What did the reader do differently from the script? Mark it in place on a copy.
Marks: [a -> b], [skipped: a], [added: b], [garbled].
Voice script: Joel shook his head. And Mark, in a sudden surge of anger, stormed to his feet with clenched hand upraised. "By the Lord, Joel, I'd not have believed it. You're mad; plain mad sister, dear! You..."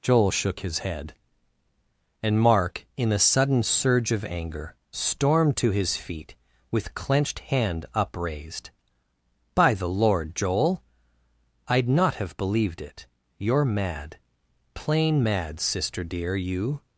Joel shook his head. And Mark, in a sudden surge of anger, stormed to his feet with clenched hand upraised. "By the Lord, Joel, I'd not have believed it. You're mad; plain mad sister, dear! You..."